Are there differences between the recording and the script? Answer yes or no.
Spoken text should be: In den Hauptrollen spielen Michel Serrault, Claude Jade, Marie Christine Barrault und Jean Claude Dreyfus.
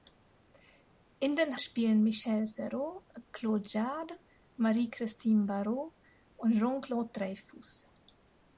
yes